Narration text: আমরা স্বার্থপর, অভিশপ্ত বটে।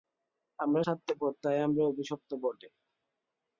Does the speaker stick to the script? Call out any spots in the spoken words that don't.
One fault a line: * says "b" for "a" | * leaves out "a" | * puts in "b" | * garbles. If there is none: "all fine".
* puts in "তাই আমরা"